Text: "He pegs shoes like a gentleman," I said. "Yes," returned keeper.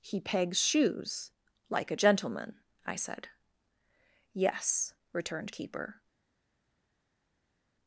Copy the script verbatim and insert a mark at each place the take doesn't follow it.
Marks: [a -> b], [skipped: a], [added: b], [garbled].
"He pegs shoes like a gentleman," I said. "Yes," returned keeper.